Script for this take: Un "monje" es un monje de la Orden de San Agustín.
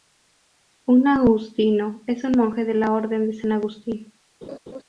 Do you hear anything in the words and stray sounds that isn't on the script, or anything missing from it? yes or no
yes